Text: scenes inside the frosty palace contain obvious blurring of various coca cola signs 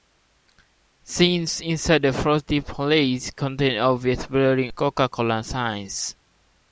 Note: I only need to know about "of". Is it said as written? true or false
false